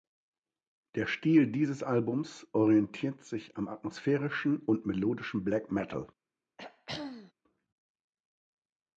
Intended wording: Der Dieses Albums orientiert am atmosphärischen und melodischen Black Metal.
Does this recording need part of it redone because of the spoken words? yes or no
yes